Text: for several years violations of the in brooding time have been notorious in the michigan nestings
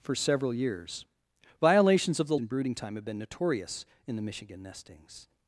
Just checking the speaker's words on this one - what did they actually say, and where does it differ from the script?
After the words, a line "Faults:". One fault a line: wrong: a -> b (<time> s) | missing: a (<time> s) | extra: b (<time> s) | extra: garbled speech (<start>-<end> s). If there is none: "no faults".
for several years violations of the in brooding time have been notorious in the michigan nestings
Faults:
no faults